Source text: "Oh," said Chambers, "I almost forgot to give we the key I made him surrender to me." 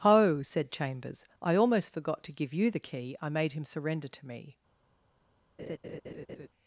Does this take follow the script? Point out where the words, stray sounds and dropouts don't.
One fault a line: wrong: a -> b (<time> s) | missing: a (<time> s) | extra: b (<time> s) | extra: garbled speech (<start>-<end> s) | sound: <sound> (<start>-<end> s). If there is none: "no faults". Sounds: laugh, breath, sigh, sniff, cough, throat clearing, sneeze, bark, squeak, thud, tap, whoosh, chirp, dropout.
wrong: we -> you (2.5 s)
sound: laugh (5.6-6.5 s)